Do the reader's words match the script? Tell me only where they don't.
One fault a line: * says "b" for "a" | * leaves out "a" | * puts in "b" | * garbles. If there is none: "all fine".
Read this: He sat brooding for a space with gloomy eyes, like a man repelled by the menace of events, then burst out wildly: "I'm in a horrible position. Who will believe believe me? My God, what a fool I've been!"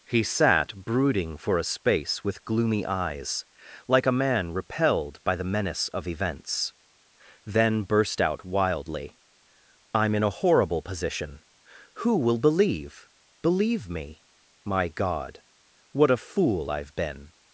all fine